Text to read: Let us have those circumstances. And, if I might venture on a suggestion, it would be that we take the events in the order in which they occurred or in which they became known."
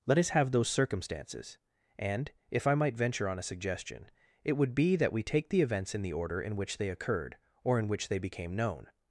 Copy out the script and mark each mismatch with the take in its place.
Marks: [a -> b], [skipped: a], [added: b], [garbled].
Let us have those circumstances. And, if I might venture on a suggestion, it would be that we take the events in the order in which they occurred or in which they became known."